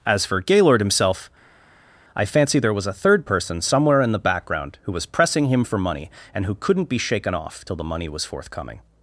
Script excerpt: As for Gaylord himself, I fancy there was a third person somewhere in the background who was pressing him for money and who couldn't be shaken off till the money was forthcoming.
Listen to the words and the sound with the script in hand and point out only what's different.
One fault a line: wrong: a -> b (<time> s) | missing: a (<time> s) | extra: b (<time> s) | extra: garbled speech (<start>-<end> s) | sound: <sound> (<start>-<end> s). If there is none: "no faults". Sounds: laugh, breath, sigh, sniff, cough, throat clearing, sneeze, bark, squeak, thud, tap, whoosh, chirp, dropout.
no faults